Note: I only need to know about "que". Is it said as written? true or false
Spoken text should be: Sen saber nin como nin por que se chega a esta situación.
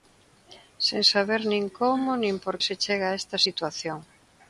false